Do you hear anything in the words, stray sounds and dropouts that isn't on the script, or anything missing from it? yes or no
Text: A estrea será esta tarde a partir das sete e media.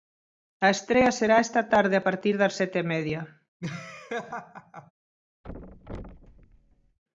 yes